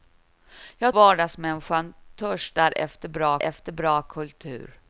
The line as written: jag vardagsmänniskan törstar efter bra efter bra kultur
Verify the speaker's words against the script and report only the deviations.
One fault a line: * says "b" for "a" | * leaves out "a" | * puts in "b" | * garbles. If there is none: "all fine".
all fine